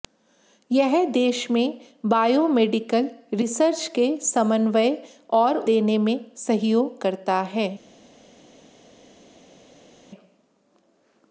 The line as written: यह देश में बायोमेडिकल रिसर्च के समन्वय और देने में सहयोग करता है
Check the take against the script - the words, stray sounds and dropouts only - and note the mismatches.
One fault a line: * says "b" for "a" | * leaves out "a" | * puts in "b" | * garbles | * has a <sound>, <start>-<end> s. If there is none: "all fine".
all fine